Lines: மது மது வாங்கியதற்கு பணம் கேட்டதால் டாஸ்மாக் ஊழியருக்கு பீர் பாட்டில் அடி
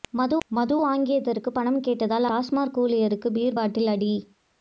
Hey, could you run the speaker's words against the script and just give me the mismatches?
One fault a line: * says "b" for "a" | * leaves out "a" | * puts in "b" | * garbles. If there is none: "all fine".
all fine